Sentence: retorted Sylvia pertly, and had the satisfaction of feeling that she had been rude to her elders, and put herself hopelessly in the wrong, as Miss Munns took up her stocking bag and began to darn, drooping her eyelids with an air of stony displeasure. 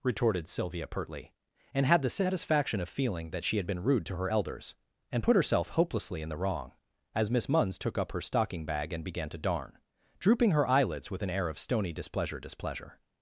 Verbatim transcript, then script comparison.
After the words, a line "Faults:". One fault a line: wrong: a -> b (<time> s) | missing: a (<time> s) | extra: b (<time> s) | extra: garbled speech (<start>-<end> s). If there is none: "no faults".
retorted Sylvia pertly, and had the satisfaction of feeling that she had been rude to her elders, and put herself hopelessly in the wrong, as Miss Munns took up her stocking bag and began to darn, drooping her eyelids with an air of stony displeasure displeasure.
Faults:
extra: displeasure (12.4 s)